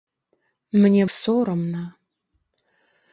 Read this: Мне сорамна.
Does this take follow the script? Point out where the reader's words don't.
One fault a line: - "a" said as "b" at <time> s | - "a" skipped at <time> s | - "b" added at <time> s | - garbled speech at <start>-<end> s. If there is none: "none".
none